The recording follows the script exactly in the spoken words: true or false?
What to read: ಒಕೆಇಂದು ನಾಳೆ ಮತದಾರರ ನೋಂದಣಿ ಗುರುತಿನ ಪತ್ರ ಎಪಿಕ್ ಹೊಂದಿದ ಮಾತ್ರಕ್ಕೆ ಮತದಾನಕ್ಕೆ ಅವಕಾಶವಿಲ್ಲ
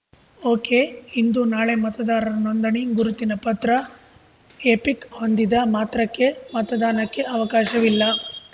true